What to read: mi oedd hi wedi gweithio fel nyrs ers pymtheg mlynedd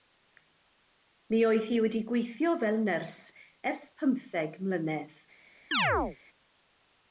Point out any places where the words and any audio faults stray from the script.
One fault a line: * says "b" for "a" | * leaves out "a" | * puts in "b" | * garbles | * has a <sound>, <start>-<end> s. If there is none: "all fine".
* has a chirp, 5.7-6.2 s